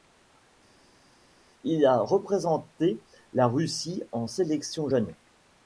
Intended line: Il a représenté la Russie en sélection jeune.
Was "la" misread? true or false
false